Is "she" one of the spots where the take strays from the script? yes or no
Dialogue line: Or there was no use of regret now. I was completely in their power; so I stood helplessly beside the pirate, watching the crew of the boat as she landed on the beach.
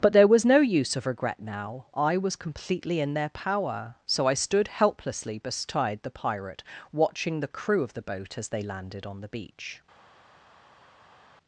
yes